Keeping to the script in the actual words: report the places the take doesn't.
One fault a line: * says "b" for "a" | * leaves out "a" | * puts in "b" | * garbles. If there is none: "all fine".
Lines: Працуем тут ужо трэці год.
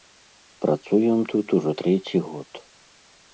all fine